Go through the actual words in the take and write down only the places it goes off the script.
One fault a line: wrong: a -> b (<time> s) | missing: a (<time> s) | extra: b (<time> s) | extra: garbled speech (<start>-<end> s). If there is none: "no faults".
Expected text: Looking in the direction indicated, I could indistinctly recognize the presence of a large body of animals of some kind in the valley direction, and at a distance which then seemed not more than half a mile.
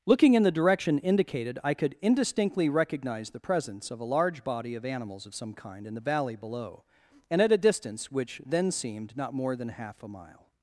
wrong: direction -> below (6.4 s)